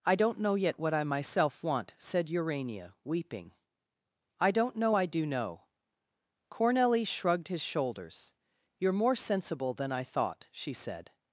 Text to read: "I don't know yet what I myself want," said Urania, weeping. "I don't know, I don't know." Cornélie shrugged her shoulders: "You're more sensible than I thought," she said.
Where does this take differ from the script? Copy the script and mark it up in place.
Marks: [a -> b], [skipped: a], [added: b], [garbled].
"I don't know yet what I myself want," said Urania, weeping. "I don't know, I [don't -> do] know." Cornélie shrugged [her -> his] shoulders: "You're more sensible than I thought," she said.